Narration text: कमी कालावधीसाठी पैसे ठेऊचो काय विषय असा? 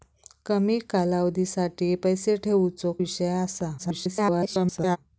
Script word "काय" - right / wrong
wrong